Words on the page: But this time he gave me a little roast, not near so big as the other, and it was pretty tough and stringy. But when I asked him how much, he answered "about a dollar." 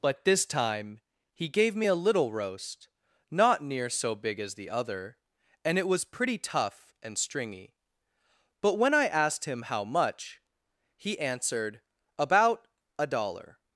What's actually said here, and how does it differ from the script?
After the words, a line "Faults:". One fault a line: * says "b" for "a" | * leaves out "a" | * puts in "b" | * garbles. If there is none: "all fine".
But this time he gave me a little roast, not near so big as the other, and it was pretty tough and stringy. But when I asked him how much, he answered "about a dollar."
Faults:
all fine